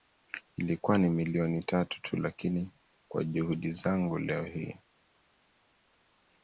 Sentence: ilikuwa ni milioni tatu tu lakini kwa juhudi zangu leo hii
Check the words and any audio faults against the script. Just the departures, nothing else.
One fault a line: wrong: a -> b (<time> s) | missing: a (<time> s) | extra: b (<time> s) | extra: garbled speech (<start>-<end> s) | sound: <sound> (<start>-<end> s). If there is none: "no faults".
no faults